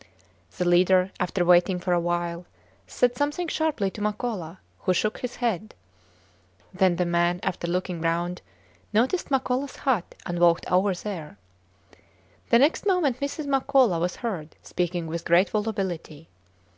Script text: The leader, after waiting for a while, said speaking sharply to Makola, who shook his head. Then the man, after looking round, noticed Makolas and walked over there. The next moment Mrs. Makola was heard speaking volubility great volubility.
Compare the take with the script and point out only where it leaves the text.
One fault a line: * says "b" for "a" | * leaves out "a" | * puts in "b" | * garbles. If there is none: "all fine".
* says "something" for "speaking"
* puts in "hut"
* says "with" for "volubility"